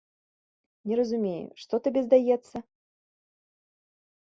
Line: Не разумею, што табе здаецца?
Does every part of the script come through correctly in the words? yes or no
yes